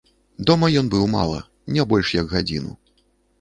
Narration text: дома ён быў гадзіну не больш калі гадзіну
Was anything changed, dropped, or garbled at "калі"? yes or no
yes